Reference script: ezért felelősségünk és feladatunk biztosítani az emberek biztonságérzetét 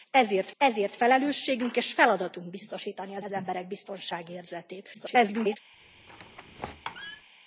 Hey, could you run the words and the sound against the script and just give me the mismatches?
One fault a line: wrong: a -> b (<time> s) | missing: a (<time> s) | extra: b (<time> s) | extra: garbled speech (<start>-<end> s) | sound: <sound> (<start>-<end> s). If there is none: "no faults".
extra: ezért (0.6 s)
extra: az (3.2 s)
extra: garbled speech (4.9-5.6 s)
sound: squeak (5.7-7.3 s)